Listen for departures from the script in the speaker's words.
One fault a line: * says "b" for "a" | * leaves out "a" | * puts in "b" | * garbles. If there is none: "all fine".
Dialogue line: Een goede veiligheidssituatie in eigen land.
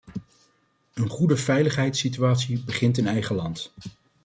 * puts in "begint"